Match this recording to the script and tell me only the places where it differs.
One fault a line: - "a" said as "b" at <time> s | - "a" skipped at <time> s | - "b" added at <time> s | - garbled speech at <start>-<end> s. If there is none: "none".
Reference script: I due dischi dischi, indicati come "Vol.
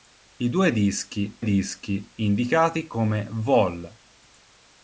none